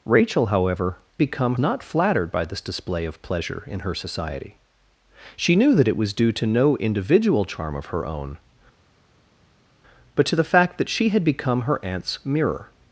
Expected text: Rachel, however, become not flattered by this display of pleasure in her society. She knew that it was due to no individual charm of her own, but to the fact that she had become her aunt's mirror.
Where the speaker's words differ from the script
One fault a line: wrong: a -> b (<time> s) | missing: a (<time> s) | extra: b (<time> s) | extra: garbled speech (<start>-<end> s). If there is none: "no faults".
no faults